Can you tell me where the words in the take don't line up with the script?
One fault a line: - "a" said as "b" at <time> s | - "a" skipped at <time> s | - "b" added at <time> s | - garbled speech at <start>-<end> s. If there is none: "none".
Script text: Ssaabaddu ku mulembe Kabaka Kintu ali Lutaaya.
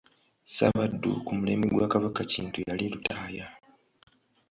- "gwa" added at 1.7 s
- "ali" said as "yali" at 2.7 s